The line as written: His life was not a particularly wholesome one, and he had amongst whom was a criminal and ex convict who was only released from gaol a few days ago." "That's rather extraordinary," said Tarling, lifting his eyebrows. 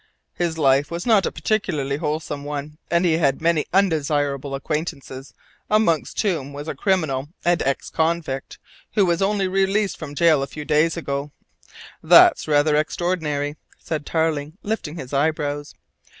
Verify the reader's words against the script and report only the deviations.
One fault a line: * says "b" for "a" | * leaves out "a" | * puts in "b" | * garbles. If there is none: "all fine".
* puts in "many undesirable acquaintances"